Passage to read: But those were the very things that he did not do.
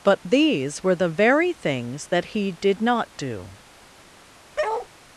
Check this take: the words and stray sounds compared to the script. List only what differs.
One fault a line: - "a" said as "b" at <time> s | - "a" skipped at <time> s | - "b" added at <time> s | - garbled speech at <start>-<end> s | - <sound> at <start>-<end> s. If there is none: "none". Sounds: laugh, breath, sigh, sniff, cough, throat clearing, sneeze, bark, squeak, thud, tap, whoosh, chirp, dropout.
- "those" said as "these" at 0.2 s
- bark at 4.6-4.9 s